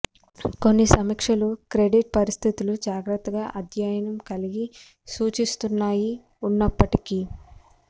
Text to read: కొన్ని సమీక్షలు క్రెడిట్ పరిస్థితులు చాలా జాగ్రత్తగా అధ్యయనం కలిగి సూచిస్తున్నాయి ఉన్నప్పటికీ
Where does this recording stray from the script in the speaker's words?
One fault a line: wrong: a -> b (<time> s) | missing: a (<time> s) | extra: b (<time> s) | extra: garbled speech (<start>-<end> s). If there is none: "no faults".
missing: చాలా (2.8 s)